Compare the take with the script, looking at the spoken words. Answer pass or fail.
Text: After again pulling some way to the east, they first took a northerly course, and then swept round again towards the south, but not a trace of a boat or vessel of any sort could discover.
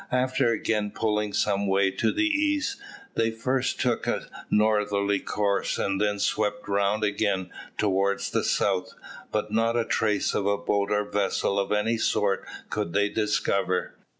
fail